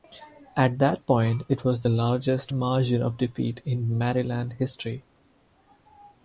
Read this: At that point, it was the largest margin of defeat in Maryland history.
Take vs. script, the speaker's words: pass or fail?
pass